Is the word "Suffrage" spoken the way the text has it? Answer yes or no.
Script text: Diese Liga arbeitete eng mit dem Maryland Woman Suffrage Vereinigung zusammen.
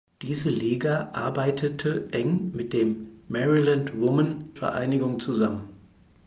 no